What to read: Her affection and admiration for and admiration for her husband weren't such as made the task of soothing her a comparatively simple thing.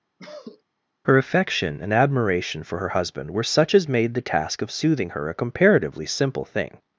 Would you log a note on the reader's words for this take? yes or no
yes